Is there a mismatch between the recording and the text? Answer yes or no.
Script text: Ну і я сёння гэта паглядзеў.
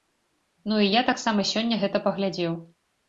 yes